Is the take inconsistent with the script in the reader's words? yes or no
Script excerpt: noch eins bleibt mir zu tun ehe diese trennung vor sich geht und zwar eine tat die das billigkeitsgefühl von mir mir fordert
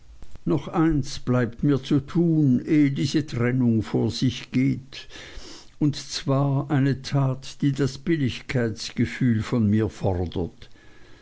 yes